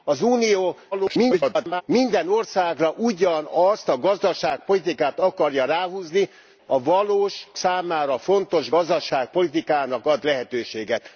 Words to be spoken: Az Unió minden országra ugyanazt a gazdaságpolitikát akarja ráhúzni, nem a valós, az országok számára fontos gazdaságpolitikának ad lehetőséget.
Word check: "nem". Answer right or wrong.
wrong